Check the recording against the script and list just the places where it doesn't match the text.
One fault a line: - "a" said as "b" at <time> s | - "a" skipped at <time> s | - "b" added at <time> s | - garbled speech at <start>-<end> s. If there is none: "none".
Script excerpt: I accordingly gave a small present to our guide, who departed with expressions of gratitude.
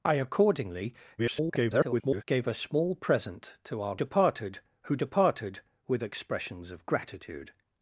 - garbled speech at 1.2-2.2 s
- "guide" said as "departed" at 3.9 s